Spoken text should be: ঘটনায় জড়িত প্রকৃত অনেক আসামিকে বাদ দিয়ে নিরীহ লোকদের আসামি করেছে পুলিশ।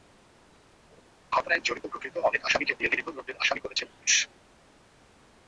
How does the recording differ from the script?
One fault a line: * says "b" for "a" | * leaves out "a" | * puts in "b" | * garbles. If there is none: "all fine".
* leaves out "বাদ"